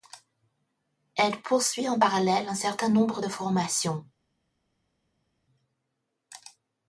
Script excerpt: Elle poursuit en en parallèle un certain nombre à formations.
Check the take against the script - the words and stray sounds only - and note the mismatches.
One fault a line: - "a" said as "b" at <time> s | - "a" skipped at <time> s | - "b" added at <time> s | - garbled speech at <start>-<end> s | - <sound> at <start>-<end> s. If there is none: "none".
- "en" skipped at 2.0 s
- "à" said as "de" at 3.2 s